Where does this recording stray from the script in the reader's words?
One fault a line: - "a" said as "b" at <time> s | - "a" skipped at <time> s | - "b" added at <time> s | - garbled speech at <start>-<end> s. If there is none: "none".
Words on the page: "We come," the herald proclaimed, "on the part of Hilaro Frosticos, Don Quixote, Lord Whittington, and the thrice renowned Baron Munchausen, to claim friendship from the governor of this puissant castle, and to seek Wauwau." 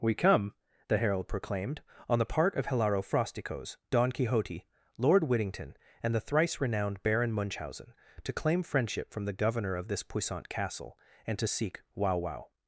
none